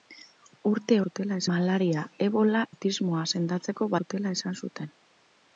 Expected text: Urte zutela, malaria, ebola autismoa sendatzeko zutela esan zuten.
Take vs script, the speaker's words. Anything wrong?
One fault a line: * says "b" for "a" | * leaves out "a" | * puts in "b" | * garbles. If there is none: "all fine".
all fine